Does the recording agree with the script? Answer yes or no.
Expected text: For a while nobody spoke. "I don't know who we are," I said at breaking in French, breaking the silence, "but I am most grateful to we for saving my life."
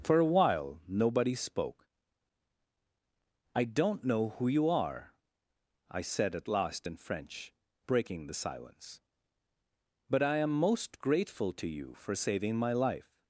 no